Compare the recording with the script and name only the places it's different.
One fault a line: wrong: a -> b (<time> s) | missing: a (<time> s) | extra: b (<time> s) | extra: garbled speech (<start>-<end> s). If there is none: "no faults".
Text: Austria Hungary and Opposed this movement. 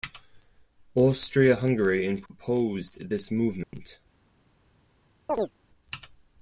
no faults